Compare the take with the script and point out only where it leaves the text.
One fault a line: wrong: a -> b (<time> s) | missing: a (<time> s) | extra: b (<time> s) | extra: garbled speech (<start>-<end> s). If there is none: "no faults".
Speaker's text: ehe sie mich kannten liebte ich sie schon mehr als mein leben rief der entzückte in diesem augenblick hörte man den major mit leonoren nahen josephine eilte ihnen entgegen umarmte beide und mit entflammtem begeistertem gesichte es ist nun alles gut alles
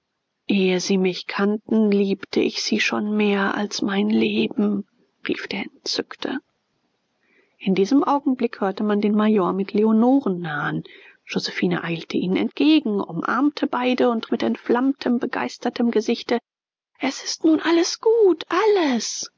no faults